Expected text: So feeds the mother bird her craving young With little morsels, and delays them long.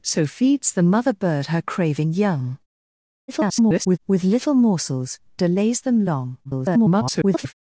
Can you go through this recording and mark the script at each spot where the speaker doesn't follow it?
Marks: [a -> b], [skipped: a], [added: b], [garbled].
So feeds the mother bird her craving young [garbled] With little morsels, [skipped: and] delays them long. [garbled]